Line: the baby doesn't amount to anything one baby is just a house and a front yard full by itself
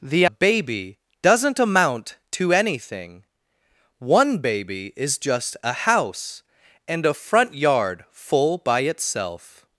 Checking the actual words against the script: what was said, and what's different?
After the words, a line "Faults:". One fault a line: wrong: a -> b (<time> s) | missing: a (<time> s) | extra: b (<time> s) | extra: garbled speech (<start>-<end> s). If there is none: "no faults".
the baby doesn't amount to anything one baby is just a house and a front yard full by itself
Faults:
no faults